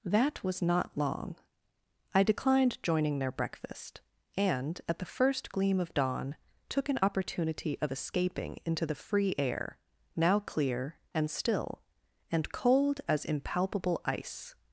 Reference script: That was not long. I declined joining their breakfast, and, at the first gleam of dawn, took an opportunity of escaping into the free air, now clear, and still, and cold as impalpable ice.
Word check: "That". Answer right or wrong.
right